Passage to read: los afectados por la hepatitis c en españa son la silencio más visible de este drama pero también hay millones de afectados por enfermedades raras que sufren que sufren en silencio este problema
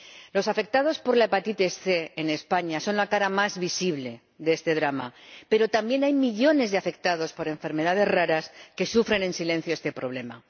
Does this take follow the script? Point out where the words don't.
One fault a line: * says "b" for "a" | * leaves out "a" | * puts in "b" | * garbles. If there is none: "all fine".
* says "cara" for "silencio"
* leaves out "que sufren"